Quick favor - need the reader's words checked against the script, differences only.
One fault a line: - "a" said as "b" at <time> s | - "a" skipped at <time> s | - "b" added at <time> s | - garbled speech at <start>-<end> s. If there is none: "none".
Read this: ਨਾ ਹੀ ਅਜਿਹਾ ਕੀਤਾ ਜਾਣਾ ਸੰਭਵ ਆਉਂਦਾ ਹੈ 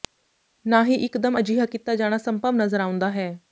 - "ਇਕਦਮ" added at 0.9 s
- "ਨਜ਼ਰ" added at 2.5 s